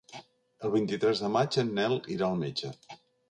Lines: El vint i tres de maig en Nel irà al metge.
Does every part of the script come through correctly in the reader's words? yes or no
yes